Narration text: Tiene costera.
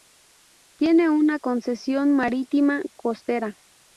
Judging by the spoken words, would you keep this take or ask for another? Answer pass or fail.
fail